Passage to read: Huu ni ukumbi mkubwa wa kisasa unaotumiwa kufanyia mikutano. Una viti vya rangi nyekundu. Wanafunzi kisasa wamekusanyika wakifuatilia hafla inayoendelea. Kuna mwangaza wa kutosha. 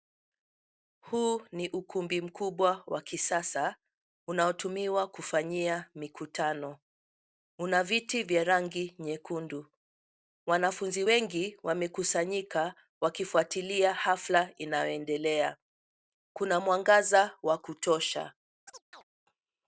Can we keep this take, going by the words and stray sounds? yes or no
no